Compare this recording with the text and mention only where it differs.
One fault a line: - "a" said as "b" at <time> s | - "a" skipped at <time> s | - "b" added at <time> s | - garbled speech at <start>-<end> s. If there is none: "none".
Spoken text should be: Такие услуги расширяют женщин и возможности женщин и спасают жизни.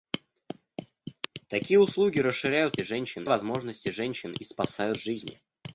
none